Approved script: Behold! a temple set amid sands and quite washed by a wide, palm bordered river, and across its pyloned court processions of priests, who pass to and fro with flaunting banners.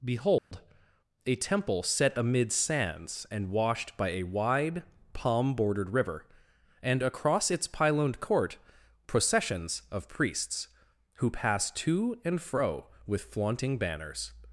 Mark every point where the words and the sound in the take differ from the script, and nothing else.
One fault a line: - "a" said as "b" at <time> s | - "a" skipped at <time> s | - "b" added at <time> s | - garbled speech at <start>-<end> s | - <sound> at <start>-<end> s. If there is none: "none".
- dropout at 0.4-0.5 s
- "quite" skipped at 3.5 s